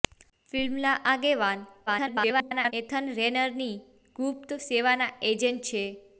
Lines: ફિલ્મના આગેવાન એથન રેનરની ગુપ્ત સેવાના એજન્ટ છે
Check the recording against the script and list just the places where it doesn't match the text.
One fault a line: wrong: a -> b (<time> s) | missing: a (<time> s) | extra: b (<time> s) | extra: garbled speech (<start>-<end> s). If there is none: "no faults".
extra: garbled speech (1.9-2.7 s)